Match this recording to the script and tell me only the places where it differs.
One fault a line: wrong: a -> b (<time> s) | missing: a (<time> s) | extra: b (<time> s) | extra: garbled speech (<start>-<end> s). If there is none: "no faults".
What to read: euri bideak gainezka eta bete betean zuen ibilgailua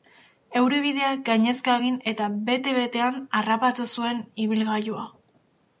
extra: egin (1.8 s)
extra: harrapatu (3.4 s)